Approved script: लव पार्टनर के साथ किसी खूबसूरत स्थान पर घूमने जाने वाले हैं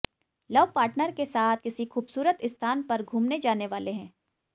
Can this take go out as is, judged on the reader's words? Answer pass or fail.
pass